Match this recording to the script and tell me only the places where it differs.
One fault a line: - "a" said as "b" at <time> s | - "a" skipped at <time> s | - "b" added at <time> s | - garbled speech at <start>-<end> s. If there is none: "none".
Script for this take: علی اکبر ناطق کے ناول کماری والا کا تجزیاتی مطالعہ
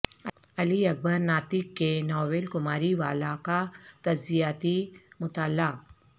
none